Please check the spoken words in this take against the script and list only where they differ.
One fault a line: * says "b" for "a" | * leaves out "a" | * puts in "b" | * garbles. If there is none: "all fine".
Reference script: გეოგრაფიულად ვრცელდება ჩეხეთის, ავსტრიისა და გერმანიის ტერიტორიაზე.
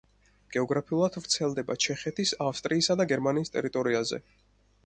all fine